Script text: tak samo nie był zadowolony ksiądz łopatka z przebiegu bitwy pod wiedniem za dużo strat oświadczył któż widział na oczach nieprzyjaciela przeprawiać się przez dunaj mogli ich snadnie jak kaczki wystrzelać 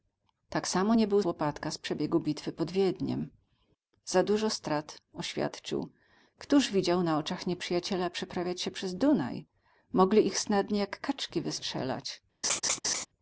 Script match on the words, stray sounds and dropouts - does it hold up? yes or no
no